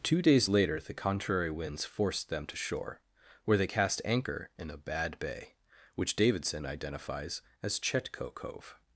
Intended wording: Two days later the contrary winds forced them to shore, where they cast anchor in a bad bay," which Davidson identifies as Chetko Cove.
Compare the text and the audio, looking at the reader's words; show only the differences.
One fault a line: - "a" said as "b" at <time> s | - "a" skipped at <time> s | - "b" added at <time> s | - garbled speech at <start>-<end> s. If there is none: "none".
none